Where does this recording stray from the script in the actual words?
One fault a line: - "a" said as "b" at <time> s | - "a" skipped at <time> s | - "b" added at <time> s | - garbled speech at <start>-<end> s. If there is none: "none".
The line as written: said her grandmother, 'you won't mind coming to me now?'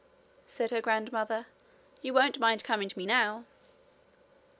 none